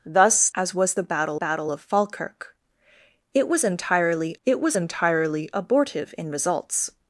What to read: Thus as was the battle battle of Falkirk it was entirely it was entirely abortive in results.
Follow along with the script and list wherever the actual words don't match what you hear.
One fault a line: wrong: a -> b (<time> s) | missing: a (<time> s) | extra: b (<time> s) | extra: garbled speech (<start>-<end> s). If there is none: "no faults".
no faults